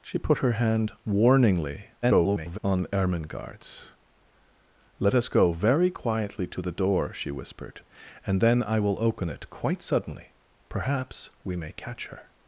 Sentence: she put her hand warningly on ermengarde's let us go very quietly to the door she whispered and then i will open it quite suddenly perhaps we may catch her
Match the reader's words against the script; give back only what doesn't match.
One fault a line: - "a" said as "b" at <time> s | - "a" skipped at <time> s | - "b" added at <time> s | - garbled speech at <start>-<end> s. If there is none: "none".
- garbled speech at 2.0-2.6 s